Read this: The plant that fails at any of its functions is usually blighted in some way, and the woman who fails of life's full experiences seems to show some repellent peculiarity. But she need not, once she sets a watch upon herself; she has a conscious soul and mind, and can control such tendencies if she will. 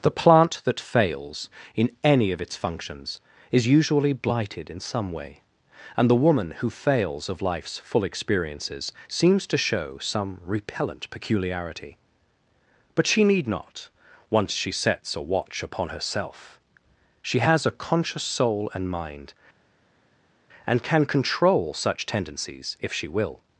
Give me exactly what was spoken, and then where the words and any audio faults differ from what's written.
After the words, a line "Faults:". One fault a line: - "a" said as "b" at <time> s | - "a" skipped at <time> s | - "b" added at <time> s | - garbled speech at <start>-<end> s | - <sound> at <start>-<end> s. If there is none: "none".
The plant that fails in any of its functions is usually blighted in some way, and the woman who fails of life's full experiences seems to show some repellent peculiarity. But she need not, once she sets a watch upon herself; she has a conscious soul and mind, and can control such tendencies if she will.
Faults:
- "at" said as "in" at 1.8 s